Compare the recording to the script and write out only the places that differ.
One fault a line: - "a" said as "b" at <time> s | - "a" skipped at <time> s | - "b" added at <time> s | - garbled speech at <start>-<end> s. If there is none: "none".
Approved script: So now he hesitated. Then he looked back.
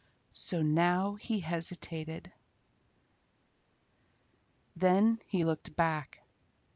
none